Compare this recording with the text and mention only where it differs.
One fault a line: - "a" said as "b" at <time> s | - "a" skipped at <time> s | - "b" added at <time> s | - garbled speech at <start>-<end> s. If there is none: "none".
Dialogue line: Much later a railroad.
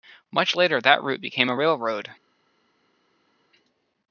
- "that route became" added at 0.8 s